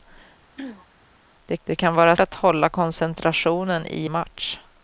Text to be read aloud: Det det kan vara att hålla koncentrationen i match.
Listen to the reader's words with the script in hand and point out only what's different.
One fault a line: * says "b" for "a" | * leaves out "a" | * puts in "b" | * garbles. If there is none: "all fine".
all fine